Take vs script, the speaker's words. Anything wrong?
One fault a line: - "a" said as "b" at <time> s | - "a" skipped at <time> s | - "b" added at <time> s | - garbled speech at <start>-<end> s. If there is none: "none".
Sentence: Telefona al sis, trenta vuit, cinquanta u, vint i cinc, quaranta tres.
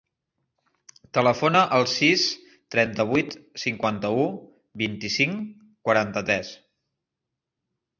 none